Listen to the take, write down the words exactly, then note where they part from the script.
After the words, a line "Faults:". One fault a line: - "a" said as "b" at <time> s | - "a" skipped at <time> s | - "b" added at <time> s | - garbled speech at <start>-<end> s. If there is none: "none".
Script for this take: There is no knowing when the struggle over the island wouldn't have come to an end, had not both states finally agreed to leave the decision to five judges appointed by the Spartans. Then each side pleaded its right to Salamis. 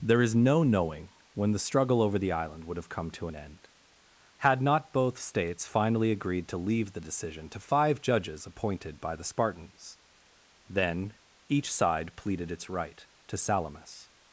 There is no knowing when the struggle over the island would have come to an end, had not both states finally agreed to leave the decision to five judges appointed by the Spartans. Then each side pleaded its right to Salamis.
Faults:
- "wouldn't" said as "would" at 2.6 s